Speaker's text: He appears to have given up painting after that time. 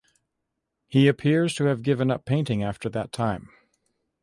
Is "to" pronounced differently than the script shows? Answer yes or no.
no